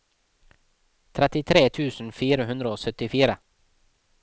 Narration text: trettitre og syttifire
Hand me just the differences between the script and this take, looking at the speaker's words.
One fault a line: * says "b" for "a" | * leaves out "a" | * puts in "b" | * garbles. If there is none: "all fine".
* puts in "tusen fire hundre"